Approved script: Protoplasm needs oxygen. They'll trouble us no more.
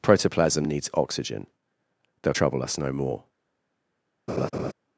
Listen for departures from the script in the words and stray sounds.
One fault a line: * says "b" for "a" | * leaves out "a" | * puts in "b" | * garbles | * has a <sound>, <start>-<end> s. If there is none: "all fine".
* has a laugh, 4.3-4.7 s